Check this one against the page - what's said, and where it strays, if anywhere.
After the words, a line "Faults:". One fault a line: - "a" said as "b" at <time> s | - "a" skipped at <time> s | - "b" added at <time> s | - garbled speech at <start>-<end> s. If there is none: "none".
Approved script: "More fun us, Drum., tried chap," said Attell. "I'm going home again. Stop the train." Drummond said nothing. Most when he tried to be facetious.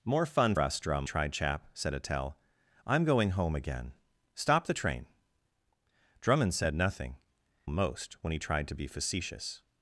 "More fun us, Drum., tried chap," said Attell. "I'm going home again. Stop the train." Drummond said nothing. Most when he tried to be facetious.
Faults:
none